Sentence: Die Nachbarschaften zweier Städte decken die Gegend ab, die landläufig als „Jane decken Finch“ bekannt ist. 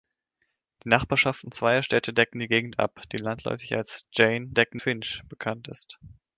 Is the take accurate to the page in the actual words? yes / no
yes